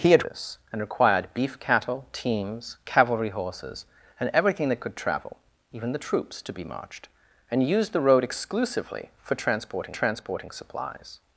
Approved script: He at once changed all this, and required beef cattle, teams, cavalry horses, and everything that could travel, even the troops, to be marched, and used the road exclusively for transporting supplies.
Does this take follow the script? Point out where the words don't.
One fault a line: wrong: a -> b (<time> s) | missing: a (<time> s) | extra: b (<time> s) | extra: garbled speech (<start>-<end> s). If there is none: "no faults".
missing: once changed all (0.2 s)
extra: transporting (9.9 s)